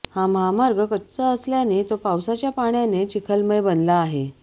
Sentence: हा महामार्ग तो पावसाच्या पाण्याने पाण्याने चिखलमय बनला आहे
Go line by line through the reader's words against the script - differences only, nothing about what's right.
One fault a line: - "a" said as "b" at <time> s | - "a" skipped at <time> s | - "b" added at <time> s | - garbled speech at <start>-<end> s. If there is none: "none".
- "कच्चा असल्याने" added at 0.8 s
- "पाण्याने" skipped at 3.0 s